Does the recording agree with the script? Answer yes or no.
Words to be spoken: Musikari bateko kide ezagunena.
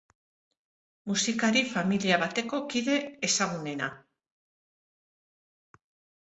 no